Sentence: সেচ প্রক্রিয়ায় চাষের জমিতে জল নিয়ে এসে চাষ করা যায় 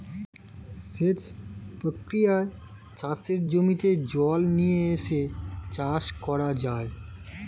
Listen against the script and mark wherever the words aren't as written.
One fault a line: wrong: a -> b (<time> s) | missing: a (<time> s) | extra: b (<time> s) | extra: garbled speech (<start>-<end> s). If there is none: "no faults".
no faults